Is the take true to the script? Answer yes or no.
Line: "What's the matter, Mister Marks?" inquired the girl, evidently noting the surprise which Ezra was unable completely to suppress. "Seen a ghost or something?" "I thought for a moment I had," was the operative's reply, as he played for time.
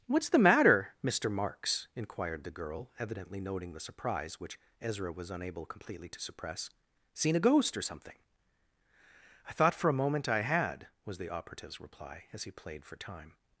yes